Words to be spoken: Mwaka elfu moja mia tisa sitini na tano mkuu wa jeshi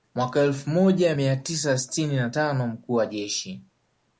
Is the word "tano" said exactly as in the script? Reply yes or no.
yes